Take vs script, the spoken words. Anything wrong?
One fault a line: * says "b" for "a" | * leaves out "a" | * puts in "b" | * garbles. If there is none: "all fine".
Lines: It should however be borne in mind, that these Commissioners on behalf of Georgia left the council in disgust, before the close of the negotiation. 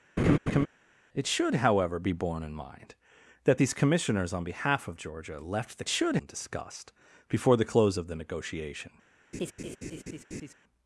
* says "should" for "council"